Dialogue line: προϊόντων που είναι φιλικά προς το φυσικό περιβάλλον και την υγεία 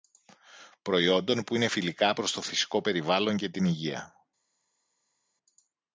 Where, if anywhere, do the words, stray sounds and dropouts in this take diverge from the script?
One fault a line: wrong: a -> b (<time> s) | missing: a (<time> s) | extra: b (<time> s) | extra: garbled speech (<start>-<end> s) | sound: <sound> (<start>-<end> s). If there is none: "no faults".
no faults